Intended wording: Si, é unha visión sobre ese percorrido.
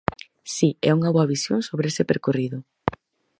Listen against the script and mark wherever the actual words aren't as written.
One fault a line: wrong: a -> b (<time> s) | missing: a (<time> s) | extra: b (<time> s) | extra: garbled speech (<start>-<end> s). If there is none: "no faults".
extra: boa (1.1 s)